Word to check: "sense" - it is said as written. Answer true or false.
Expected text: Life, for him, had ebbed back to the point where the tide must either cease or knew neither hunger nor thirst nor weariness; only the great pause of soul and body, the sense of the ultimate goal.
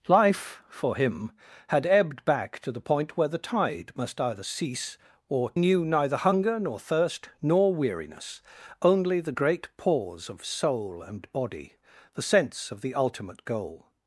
true